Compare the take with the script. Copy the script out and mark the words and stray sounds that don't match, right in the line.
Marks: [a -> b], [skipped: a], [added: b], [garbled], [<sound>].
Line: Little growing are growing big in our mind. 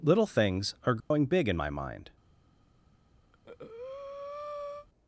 Little [growing -> things] are growing [dropout] big in [our -> my] mind. [breath]